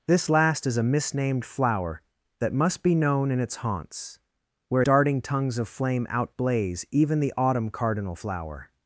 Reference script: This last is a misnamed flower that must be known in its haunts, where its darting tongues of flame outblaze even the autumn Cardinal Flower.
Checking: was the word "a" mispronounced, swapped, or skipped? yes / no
no